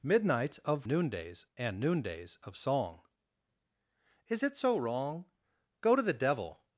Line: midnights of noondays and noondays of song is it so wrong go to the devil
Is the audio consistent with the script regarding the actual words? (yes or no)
yes